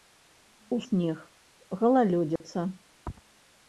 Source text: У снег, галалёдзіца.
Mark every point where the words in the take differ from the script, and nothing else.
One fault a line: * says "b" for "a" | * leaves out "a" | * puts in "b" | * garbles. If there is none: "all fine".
all fine